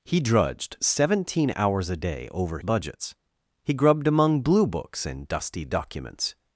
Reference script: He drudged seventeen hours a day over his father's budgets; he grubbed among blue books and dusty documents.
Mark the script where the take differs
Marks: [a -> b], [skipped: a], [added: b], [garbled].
He drudged seventeen hours a day over [skipped: his father's] budgets; he grubbed among blue books and dusty documents.